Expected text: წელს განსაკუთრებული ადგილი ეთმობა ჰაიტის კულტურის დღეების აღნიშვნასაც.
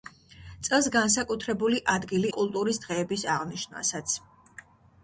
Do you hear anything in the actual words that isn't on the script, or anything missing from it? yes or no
yes